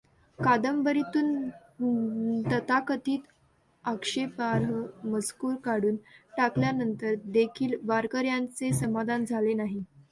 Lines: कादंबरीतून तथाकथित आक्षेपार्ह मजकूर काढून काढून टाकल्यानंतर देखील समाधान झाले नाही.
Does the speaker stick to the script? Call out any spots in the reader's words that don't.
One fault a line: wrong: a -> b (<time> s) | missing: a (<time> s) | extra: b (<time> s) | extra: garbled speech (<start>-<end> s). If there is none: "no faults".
missing: काढून (6.0 s)
extra: वारकऱ्यांचे (7.8 s)